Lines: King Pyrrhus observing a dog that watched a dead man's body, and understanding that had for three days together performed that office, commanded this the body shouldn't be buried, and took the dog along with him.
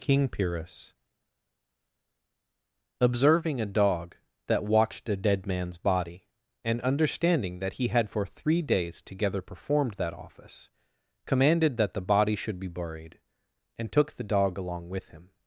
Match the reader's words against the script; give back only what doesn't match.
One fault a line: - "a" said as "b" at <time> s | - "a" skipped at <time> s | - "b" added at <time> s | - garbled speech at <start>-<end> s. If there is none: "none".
- "he" added at 7.7 s
- "this" said as "that" at 11.8 s
- "shouldn't" said as "should" at 12.3 s